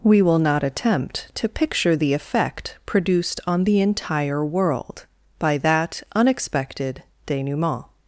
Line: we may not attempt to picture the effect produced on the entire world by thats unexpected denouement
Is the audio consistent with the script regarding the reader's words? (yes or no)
no